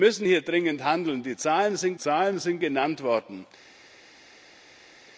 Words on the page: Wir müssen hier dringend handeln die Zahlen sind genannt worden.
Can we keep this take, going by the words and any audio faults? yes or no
no